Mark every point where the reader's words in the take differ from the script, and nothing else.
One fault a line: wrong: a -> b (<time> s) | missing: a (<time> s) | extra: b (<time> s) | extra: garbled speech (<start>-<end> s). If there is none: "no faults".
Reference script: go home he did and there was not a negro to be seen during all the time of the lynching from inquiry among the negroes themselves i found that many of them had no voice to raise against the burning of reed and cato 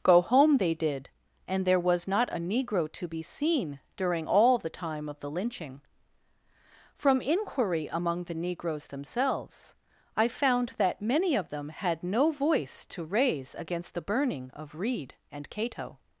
wrong: he -> they (0.6 s)